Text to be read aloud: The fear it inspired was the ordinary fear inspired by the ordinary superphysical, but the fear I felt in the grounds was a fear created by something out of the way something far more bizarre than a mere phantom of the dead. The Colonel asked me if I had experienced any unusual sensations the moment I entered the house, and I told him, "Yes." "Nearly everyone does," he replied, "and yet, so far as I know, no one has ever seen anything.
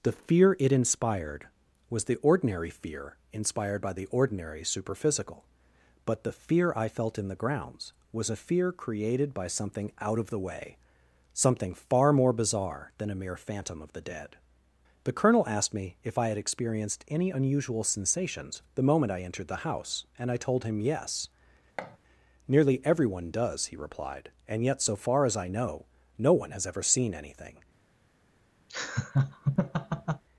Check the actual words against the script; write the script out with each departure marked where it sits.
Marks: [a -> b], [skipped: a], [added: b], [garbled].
The fear it inspired was the ordinary fear inspired by the ordinary superphysical, but the fear I felt in the grounds was a fear created by something out of the way something far more bizarre than a mere phantom of the dead. The Colonel asked me if I had experienced any unusual sensations the moment I entered the house, and I told him, "Yes." "Nearly everyone does," he replied, "and yet, so far as I know, no one has ever seen anything.